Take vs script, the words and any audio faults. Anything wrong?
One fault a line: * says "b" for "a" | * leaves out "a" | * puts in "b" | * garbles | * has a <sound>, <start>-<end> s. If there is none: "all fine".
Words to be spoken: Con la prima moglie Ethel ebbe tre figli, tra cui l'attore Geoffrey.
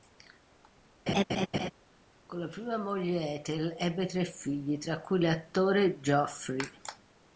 * has a laugh, 1.1-1.7 s